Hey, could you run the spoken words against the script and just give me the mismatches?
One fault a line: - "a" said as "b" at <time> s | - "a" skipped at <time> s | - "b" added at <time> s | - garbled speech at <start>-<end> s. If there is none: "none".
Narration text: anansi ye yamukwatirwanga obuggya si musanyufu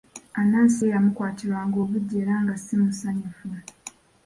- "era nga" added at 2.2 s